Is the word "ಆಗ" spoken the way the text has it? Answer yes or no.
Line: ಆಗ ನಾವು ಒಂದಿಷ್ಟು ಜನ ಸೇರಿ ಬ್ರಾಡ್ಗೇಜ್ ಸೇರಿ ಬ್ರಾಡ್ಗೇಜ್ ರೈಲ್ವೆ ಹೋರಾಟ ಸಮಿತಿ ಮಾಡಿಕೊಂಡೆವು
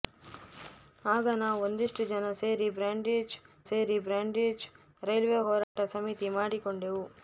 yes